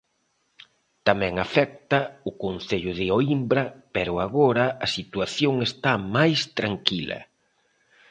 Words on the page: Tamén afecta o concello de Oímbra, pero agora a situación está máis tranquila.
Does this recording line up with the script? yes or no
yes